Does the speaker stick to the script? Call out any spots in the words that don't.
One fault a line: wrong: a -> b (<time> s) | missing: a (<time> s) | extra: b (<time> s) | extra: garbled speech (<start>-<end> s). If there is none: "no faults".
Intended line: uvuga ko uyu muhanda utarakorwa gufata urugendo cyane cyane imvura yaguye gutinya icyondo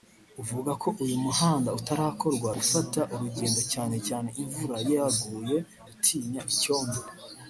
no faults